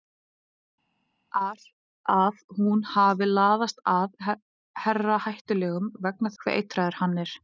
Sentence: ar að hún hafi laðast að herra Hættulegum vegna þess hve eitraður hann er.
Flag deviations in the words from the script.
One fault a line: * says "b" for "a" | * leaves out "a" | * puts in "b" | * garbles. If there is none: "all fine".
* leaves out "þess"